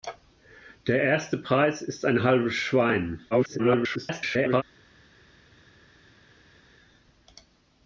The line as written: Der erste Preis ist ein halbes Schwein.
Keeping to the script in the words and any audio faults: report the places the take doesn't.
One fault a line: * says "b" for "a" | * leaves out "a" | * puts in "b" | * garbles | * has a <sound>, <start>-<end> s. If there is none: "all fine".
* garbles